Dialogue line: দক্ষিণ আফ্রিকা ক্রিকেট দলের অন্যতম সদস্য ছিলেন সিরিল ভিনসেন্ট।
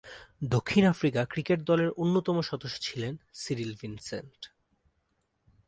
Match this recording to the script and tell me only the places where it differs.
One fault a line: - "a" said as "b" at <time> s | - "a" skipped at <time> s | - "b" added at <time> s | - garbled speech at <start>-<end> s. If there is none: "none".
none